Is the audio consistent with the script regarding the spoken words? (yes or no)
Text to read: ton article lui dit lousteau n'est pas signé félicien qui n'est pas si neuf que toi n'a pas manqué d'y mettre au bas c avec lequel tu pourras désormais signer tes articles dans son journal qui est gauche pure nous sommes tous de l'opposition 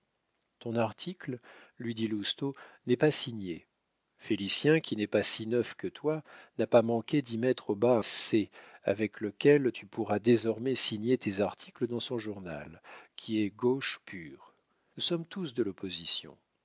yes